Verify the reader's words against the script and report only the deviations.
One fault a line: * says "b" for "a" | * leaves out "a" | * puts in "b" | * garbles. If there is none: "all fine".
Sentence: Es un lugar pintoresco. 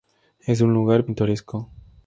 all fine